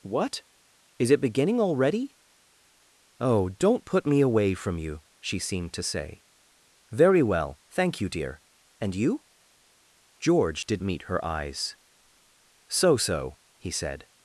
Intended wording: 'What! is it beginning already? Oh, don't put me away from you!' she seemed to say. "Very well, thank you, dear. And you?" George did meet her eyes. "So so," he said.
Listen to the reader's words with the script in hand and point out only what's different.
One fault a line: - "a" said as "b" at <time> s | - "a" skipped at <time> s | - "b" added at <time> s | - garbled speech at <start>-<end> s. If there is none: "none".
none